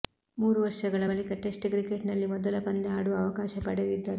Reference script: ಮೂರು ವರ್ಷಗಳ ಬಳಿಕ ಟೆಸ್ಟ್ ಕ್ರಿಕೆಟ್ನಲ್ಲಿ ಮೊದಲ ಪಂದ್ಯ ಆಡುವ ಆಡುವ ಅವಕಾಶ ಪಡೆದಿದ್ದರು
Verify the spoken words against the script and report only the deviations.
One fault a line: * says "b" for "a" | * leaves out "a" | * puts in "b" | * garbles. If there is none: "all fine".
* leaves out "ಆಡುವ"